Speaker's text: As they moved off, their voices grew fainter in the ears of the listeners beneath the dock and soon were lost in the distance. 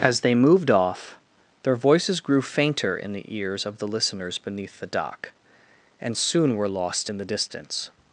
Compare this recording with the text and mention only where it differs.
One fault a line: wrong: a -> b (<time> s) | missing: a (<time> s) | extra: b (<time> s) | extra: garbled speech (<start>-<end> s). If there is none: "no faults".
no faults